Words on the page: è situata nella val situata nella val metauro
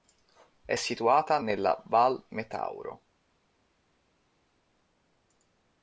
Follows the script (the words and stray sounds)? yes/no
no